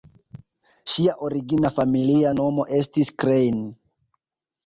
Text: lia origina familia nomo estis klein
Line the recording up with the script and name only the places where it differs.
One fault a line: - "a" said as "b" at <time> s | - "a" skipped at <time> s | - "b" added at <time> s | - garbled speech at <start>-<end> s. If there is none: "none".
- "lia" said as "ŝia" at 0.9 s